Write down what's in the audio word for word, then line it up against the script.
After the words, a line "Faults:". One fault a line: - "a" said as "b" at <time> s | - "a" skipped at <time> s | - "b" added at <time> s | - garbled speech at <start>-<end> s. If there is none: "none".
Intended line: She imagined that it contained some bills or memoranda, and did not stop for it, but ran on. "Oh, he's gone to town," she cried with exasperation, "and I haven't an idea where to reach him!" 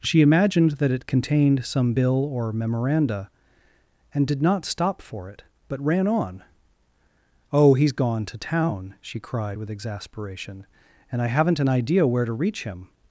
She imagined that it contained some bill or memoranda, and did not stop for it, but ran on. "Oh, he's gone to town," she cried with exasperation, "and I haven't an idea where to reach him!"
Faults:
- "bills" said as "bill" at 1.9 s